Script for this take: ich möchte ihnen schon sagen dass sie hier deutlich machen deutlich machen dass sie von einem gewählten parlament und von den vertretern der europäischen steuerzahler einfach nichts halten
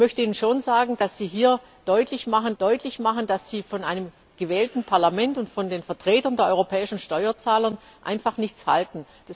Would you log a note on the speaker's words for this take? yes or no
no